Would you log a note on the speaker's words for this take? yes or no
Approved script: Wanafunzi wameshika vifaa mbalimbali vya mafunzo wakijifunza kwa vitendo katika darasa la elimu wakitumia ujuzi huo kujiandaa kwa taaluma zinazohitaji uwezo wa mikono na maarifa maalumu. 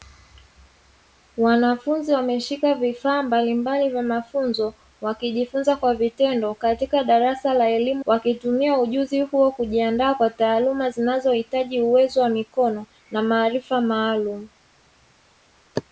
no